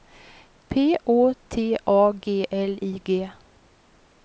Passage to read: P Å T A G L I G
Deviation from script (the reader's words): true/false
false